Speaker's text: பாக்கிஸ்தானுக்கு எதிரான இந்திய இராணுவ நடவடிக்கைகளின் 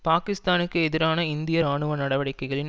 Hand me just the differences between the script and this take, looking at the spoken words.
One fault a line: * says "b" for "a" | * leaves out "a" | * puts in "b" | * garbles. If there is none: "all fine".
all fine